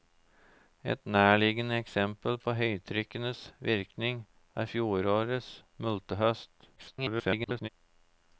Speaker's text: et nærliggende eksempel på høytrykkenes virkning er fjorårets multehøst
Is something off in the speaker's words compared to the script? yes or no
yes